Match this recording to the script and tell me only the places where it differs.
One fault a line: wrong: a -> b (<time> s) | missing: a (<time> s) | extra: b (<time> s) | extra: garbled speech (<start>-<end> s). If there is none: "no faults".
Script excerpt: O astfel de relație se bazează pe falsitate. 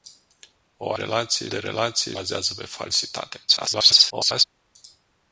wrong: astfel -> relație (0.9 s)
missing: se (2.2 s)
extra: garbled speech (3.5-4.4 s)